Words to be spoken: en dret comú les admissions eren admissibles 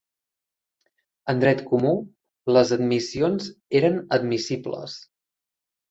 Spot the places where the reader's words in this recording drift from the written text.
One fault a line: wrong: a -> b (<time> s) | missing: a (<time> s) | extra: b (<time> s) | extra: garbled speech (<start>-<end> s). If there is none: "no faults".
no faults